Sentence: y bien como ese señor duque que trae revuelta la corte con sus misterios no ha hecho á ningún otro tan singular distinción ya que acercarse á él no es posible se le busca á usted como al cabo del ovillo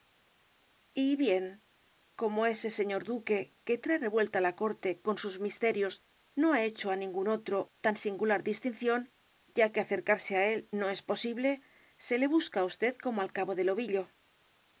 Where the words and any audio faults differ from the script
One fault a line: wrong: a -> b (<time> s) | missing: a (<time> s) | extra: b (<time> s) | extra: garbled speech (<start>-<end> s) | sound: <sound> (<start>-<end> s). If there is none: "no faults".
no faults